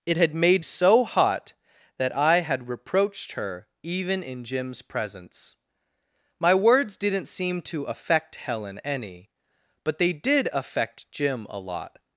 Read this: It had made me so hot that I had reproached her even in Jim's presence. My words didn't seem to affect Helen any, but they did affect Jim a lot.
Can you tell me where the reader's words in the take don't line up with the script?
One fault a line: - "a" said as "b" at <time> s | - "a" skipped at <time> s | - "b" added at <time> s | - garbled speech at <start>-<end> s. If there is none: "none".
- "me" skipped at 0.7 s